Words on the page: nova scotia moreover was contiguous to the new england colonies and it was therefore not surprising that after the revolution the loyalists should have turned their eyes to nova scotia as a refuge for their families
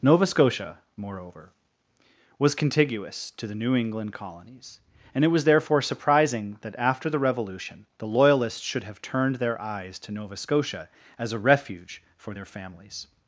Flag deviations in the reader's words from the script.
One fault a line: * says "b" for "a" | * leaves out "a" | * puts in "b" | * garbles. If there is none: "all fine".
* leaves out "not"